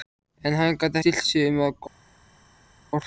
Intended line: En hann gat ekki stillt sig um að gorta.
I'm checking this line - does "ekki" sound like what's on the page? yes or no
no